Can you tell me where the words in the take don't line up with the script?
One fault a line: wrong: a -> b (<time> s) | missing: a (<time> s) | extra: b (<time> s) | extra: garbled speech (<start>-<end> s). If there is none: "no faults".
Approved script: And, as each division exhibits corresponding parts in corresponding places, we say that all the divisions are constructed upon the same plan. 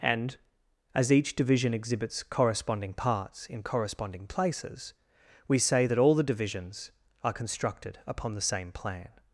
no faults